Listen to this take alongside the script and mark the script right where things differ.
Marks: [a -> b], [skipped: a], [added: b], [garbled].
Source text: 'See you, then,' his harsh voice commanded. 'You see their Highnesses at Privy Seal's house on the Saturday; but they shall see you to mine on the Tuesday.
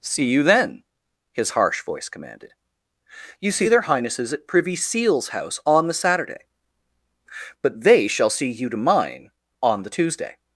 'See you, then,' his harsh voice commanded. 'You see their Highnesses at Privy Seal's house on the Saturday; but they shall see you to mine on the Tuesday.